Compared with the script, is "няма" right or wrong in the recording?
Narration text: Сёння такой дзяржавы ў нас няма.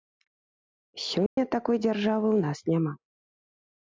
right